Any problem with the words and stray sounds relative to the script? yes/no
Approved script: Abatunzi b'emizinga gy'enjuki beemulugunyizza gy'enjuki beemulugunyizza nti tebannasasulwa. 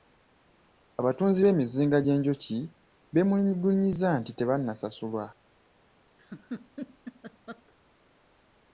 yes